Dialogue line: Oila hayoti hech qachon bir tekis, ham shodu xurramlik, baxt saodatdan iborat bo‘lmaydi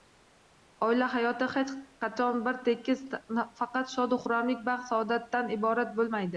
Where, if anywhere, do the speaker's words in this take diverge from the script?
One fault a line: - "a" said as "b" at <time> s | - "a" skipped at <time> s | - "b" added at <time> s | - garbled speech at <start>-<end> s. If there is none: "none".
- "ham" said as "faqat" at 3.6 s